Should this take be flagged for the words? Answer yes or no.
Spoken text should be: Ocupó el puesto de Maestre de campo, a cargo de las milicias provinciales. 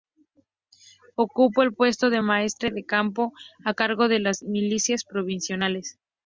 no